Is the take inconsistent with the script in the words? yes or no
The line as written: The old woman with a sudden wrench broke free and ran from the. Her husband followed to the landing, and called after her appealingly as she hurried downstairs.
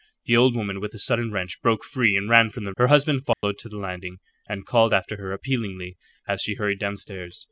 no